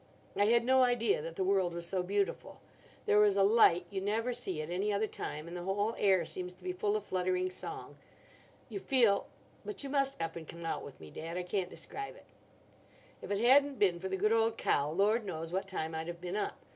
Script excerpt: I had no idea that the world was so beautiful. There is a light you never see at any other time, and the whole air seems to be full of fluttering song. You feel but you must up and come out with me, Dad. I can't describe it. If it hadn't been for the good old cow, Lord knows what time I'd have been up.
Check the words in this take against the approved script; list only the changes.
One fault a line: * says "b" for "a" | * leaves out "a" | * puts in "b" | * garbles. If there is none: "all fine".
all fine